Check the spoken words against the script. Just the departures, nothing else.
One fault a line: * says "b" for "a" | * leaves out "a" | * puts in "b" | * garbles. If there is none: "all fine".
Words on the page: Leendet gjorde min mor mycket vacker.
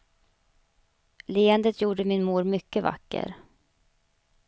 all fine